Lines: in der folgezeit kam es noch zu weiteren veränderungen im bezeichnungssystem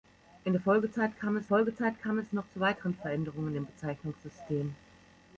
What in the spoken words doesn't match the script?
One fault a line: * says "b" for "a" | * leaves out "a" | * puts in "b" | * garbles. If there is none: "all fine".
* puts in "folgezeit kam es"